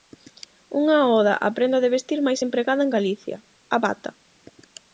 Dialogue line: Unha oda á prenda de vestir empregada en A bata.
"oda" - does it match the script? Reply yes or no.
yes